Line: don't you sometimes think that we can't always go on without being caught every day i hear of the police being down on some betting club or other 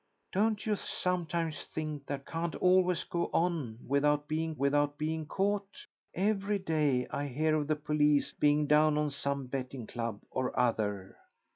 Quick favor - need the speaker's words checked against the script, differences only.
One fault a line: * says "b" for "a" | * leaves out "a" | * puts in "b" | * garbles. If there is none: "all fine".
* leaves out "we"
* puts in "without being"